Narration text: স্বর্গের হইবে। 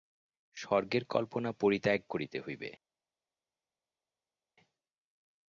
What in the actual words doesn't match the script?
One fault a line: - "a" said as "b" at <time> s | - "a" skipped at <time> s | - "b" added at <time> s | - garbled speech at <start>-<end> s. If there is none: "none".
- "কল্পনা পরিত্যাগ করিতে" added at 1.1 s